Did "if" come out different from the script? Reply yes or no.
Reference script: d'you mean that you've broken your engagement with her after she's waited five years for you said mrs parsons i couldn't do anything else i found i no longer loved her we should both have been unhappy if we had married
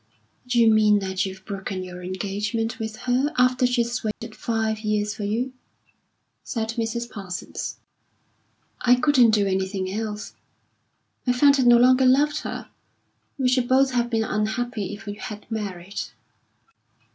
no